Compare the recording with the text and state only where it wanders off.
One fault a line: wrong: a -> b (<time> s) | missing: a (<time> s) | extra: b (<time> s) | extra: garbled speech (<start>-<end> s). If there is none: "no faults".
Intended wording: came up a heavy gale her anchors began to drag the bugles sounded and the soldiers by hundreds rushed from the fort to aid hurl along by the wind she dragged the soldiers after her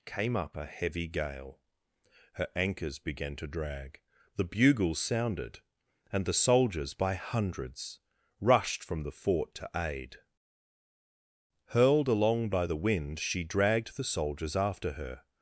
wrong: hurl -> hurled (11.7 s)